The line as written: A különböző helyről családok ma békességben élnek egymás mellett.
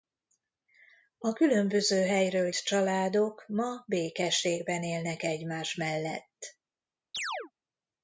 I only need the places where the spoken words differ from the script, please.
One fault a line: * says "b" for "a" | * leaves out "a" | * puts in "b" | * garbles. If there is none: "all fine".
all fine